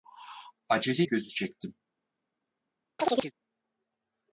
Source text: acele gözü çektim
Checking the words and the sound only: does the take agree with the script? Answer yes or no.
no